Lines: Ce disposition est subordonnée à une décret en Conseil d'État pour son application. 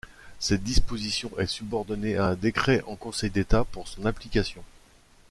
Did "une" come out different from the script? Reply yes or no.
yes